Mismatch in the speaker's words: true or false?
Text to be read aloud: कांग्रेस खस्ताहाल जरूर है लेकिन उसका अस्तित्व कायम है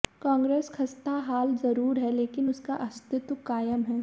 false